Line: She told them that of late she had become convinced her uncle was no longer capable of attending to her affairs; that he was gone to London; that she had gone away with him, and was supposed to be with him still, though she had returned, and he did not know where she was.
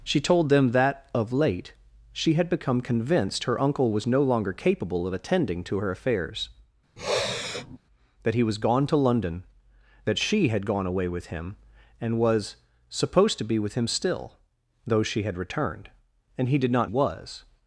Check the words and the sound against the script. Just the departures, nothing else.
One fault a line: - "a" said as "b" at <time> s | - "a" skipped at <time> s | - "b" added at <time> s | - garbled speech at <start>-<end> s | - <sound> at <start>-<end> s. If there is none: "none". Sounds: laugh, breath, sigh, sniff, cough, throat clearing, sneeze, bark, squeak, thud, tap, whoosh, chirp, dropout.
- sniff at 7.0-7.8 s
- "know where she" skipped at 16.9 s